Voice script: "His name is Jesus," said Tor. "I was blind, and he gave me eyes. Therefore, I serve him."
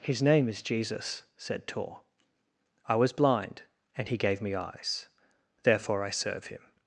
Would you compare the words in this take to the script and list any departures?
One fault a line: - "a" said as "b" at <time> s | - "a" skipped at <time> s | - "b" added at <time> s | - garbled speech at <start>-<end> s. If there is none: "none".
none